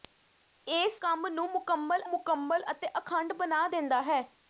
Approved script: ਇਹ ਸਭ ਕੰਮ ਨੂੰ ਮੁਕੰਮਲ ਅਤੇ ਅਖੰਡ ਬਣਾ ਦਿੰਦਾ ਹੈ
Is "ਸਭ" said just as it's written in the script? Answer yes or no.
no